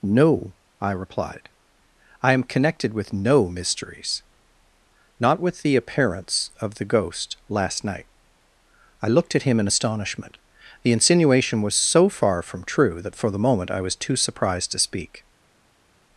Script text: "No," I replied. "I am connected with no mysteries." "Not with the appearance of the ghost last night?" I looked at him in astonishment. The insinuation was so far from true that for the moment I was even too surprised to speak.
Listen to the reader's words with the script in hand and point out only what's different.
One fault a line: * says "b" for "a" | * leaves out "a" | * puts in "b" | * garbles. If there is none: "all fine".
* leaves out "even"